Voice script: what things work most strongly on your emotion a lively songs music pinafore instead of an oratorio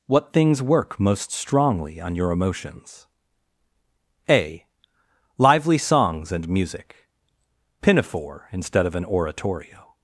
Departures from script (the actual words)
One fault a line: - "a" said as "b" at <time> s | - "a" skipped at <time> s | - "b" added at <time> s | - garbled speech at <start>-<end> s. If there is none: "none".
- "emotion" said as "emotions" at 2.3 s
- "and" added at 6.3 s